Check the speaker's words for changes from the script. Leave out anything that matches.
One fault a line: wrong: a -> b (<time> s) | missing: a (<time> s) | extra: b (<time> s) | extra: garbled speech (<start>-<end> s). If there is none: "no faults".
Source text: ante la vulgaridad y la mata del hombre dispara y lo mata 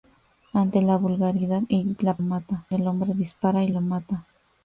no faults